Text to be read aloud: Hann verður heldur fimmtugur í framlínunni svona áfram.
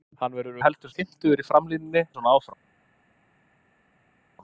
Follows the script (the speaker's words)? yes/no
yes